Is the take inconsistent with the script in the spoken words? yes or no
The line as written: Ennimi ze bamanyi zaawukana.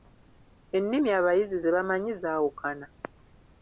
yes